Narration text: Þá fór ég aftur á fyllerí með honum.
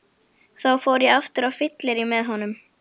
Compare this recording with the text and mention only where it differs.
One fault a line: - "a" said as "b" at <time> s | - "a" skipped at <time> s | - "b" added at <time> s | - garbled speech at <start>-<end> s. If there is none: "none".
none